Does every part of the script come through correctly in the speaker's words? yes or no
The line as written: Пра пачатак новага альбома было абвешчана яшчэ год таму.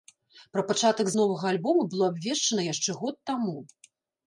yes